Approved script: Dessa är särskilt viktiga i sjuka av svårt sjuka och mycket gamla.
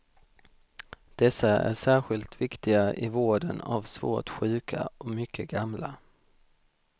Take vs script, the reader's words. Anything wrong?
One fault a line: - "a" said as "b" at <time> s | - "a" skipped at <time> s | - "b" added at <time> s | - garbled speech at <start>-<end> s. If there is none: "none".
- "sjuka" said as "vården" at 3.1 s